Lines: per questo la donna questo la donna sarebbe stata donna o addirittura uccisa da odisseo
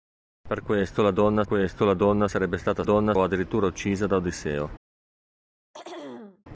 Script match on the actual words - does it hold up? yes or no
yes